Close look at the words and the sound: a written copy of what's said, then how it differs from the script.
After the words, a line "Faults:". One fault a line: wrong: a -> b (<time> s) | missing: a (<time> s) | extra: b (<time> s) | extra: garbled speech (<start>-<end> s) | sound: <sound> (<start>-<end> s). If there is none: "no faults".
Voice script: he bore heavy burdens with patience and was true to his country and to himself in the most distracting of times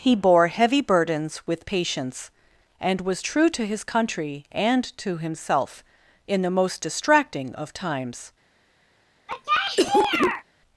he bore heavy burdens with patience and was true to his country and to himself in the most distracting of times
Faults:
sound: cough (9.3-10.4 s)